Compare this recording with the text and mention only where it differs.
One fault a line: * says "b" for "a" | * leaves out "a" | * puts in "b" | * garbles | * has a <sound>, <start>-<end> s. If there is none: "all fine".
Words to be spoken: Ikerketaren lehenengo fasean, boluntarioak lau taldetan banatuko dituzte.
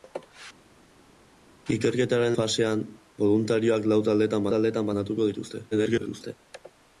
* leaves out "lehenengo"
* puts in "taldetan"
* garbles